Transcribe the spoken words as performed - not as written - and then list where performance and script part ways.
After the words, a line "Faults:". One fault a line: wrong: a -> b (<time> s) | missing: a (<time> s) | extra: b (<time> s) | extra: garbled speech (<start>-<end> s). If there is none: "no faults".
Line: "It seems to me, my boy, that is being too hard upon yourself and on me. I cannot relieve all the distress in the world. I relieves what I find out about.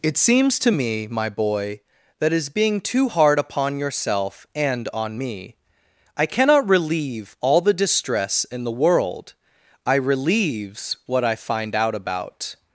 "It seems to me, my boy, that is being too hard upon yourself and on me. I cannot relieve all the distress in the world. I relieves what I find out about.
Faults:
no faults